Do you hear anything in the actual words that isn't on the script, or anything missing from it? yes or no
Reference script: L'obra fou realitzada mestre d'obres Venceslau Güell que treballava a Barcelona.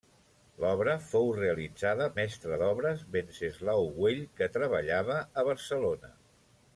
no